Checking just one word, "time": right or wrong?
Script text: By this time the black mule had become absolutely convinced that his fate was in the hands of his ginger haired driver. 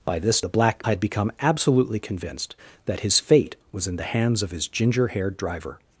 wrong